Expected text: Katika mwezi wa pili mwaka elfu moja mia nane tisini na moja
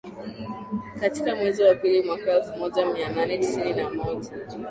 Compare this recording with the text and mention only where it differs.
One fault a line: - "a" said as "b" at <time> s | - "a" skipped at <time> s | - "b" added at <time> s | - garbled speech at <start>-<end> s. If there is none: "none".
none